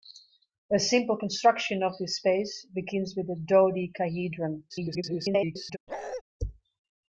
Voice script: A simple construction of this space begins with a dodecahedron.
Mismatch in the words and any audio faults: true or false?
true